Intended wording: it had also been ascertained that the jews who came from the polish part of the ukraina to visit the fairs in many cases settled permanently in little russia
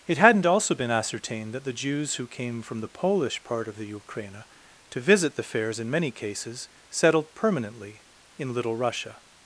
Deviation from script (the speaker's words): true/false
true